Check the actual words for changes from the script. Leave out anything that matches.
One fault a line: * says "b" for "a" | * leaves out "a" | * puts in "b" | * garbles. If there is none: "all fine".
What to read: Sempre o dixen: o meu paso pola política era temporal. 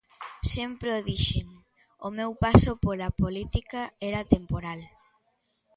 all fine